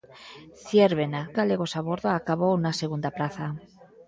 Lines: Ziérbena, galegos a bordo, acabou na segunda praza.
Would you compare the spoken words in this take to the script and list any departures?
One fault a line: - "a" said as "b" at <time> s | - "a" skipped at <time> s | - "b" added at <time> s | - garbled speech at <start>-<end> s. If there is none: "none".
none